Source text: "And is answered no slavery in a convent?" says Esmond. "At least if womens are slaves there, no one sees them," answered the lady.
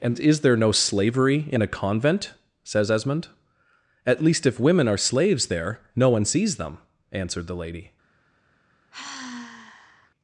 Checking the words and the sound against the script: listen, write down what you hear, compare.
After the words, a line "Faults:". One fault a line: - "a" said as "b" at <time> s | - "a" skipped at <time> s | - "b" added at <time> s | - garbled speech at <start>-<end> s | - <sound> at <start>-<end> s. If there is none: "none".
"And is there no slavery in a convent?" says Esmond. "At least if women are slaves there, no one sees them," answered the lady.
Faults:
- "answered" said as "there" at 0.4 s
- "womens" said as "women" at 4.6 s
- sigh at 8.9-10.1 s